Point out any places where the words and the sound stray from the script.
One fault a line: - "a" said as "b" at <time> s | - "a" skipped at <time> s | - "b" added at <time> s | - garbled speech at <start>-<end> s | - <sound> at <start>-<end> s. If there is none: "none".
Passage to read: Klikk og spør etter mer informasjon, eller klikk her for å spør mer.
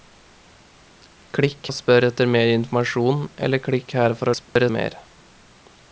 - dropout at 4.4-4.6 s